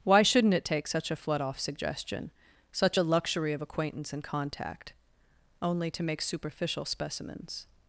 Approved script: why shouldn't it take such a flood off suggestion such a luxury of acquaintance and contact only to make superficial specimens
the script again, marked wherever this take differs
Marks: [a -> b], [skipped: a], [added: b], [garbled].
why shouldn't it take such a flood off suggestion such a luxury of acquaintance and contact only to make superficial specimens